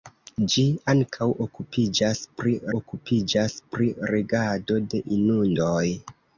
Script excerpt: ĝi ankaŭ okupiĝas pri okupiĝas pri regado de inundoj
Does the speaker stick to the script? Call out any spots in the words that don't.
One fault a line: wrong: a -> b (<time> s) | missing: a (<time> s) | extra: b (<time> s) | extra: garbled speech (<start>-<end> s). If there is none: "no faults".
no faults